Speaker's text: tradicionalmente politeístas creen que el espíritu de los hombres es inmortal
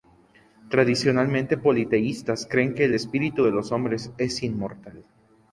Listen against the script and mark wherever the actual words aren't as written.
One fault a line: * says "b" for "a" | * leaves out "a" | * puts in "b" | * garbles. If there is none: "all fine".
all fine